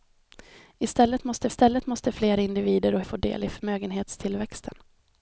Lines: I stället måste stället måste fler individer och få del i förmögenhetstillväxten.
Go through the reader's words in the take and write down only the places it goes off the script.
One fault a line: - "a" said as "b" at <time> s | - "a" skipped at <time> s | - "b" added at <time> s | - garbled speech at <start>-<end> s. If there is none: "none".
none